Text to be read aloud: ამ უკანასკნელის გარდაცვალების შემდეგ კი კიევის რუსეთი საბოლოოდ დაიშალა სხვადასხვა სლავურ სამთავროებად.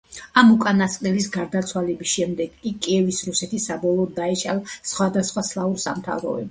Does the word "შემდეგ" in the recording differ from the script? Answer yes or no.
no